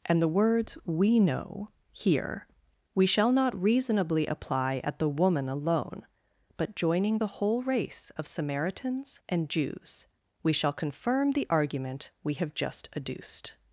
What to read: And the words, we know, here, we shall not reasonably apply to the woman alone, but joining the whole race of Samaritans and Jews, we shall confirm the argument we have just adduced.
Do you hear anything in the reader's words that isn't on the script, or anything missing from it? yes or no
yes